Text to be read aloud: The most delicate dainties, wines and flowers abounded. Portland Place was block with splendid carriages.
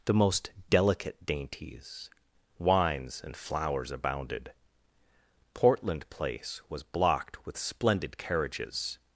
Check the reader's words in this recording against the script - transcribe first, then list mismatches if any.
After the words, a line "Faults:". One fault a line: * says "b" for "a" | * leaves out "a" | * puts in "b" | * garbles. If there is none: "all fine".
The most delicate dainties, wines and flowers abounded. Portland Place was blocked with splendid carriages.
Faults:
* says "blocked" for "block"